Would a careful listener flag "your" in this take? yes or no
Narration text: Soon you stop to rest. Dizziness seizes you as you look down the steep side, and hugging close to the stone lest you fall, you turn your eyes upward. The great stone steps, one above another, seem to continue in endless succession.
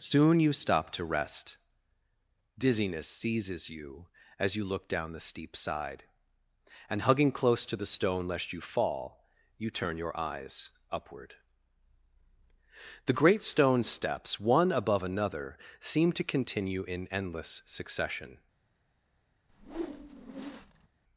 no